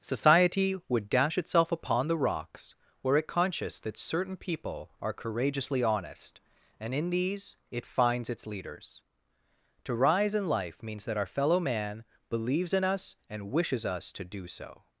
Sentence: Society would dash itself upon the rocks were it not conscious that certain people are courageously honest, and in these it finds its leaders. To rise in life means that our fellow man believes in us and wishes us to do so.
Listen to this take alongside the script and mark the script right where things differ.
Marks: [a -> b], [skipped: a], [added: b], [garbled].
Society would dash itself upon the rocks were it [skipped: not] conscious that certain people are courageously honest, and in these it finds its leaders. To rise in life means that our fellow man believes in us and wishes us to do so.